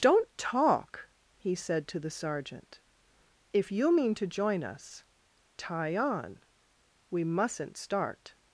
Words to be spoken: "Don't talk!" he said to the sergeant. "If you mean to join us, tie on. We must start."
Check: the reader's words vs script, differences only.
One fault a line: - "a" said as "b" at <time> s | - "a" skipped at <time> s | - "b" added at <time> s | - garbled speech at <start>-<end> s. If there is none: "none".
- "must" said as "mustn't" at 7.2 s